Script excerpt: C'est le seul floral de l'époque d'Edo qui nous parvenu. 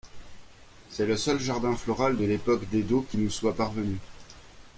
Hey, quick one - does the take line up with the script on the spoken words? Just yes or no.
no